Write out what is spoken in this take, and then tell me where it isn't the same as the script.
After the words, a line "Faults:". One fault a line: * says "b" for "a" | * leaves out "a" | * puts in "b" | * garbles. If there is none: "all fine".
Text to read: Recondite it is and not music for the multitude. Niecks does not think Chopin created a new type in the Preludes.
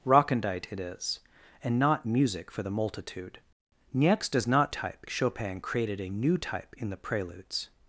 Recondite it is and not music for the multitude. Niecks does not type Chopin created a new type in the Preludes.
Faults:
* says "type" for "think"